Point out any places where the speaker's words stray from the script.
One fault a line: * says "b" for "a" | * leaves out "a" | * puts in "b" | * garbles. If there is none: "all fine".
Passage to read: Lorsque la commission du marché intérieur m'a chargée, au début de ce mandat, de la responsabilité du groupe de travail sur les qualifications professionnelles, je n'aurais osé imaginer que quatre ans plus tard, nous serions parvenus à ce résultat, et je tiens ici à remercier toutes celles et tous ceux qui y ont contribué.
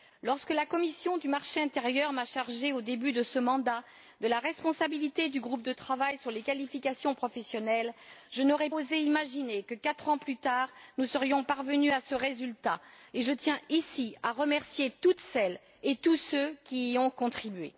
all fine